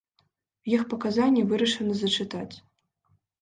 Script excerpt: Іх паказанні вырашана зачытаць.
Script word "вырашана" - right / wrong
right